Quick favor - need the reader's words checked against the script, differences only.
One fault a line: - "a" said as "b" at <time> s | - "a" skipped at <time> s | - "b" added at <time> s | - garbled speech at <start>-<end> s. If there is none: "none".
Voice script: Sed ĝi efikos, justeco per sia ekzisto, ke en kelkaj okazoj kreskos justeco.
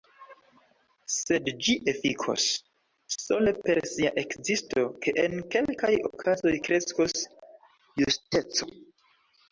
- "justeco" said as "sole" at 3.1 s